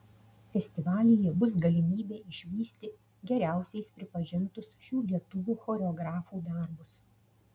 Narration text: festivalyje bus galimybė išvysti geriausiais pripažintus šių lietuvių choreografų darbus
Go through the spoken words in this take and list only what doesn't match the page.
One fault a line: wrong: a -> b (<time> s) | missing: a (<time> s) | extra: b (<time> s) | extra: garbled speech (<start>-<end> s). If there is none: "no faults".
no faults